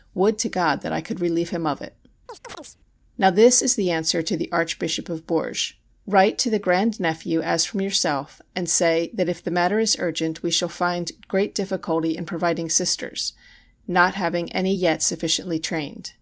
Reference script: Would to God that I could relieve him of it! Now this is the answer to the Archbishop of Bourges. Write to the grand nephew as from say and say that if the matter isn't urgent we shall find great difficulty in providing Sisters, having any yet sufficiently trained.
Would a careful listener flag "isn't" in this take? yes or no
yes